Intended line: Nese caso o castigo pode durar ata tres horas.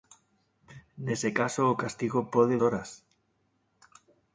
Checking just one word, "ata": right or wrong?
wrong